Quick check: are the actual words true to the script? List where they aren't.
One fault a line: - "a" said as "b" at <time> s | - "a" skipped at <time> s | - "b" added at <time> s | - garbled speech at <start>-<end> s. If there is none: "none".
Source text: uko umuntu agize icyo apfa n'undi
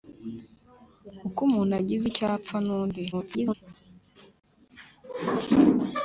- garbled speech at 3.1-3.5 s